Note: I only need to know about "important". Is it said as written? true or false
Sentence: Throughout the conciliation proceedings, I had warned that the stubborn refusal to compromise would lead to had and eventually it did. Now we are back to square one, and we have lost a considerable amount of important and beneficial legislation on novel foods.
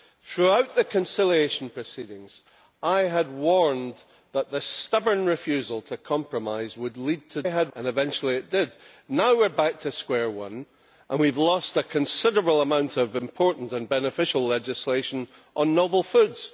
true